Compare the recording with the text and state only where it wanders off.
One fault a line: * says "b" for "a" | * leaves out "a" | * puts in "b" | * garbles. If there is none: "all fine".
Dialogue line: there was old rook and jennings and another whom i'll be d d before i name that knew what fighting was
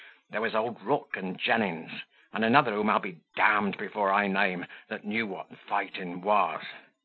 all fine